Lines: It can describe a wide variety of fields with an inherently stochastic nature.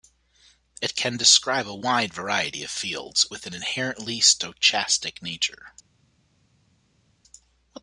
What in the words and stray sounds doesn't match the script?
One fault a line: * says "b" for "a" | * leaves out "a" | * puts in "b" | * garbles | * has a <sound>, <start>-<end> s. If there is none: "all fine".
all fine